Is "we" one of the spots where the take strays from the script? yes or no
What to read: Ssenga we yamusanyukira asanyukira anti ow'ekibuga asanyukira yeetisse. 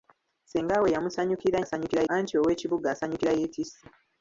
no